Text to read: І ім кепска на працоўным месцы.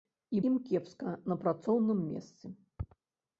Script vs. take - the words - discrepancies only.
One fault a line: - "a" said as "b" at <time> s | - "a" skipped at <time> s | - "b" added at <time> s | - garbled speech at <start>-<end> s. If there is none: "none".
none